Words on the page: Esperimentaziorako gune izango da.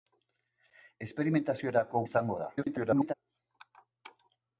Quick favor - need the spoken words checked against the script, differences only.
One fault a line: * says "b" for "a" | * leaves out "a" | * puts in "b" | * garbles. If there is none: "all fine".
* leaves out "gune"
* garbles